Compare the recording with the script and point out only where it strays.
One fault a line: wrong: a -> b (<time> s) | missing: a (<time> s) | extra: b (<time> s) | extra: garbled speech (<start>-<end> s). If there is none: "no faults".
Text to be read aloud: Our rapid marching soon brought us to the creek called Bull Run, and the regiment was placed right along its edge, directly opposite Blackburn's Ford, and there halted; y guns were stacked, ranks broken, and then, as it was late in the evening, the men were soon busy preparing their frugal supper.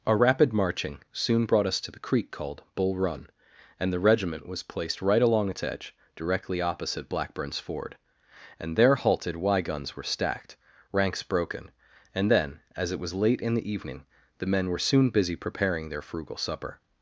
no faults